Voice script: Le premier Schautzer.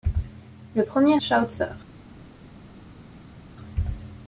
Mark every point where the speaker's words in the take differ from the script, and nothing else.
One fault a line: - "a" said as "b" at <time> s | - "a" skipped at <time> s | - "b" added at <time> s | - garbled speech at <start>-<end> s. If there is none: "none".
none